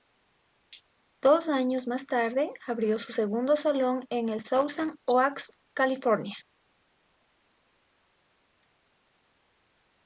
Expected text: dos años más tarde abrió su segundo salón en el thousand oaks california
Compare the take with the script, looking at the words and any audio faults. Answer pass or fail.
pass